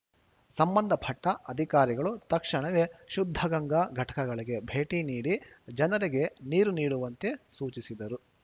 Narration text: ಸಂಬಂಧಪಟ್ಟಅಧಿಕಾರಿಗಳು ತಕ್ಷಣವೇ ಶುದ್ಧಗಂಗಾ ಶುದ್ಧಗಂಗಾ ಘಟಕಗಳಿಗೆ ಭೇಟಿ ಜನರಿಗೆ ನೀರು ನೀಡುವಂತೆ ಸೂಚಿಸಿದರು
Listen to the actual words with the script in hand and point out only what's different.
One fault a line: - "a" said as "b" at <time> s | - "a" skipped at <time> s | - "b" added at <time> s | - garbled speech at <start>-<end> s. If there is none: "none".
- "ಶುದ್ಧಗಂಗಾ" skipped at 3.8 s
- "ನೀಡಿ" added at 5.0 s